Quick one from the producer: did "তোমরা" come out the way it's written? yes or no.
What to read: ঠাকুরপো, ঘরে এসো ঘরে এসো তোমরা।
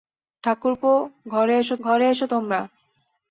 yes